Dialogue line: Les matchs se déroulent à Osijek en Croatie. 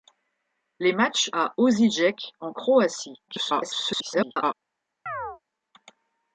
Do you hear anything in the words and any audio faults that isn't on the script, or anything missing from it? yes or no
yes